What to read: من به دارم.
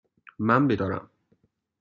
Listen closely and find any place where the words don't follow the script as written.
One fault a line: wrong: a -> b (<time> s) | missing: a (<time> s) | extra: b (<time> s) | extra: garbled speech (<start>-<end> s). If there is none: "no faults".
no faults